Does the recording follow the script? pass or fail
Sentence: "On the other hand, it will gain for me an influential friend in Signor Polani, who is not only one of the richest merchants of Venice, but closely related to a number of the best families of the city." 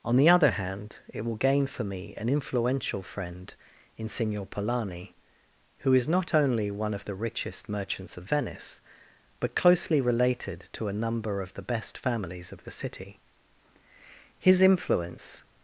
fail